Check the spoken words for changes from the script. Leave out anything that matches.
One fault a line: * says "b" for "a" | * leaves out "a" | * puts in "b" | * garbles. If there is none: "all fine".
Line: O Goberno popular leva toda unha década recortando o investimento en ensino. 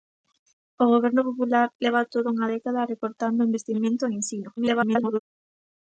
* garbles